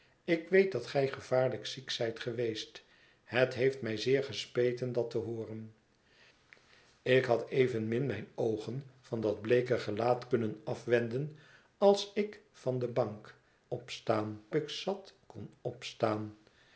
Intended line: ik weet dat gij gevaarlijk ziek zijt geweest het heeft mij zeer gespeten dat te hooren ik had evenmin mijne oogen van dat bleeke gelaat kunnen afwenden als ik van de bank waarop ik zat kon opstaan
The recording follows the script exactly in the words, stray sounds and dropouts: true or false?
false